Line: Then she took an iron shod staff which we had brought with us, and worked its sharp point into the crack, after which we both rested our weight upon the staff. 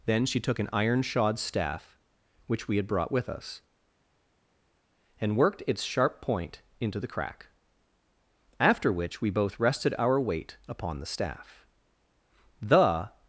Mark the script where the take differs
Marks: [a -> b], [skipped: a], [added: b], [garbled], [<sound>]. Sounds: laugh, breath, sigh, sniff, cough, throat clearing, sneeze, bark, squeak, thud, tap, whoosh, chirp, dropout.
Then she took an iron shod staff which we had brought with us, and worked its sharp point into the crack, after which we both rested our weight upon the staff. [added: The]